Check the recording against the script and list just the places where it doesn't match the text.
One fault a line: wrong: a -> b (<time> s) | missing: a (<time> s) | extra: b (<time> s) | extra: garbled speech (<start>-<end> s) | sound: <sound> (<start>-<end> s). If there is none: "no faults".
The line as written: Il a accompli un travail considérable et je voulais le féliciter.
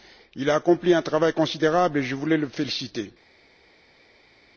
no faults